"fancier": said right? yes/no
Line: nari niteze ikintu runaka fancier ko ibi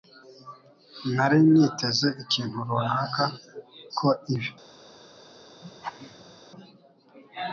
no